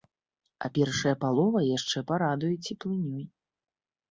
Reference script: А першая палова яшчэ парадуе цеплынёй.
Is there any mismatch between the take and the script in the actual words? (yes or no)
no